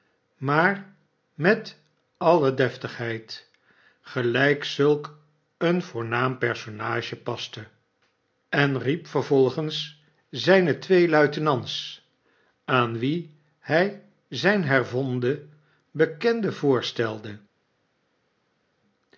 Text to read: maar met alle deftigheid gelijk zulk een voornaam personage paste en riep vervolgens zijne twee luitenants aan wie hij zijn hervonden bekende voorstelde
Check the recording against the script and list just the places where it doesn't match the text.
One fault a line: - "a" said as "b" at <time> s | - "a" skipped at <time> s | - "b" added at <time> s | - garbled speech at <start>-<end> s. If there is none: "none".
none